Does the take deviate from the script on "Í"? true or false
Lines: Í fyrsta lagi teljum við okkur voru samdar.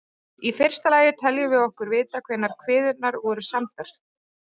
false